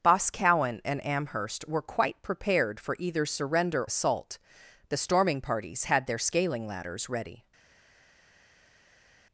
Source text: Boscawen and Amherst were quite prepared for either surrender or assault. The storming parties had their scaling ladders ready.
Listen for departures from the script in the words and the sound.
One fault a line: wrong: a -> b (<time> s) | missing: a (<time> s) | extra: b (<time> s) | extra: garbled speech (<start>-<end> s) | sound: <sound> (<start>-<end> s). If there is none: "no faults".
missing: or (3.9 s)